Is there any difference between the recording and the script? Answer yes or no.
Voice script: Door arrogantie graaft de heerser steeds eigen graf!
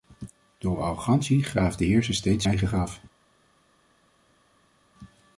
no